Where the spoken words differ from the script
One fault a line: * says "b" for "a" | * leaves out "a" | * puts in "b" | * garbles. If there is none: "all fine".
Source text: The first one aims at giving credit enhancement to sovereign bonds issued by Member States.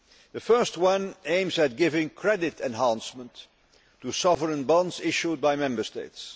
all fine